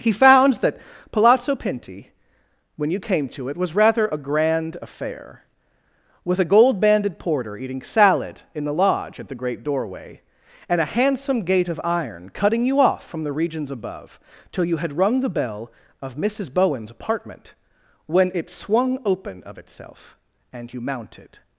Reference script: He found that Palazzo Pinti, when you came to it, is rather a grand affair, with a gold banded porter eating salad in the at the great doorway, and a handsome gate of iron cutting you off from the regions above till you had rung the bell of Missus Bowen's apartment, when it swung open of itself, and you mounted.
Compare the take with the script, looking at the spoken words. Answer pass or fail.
fail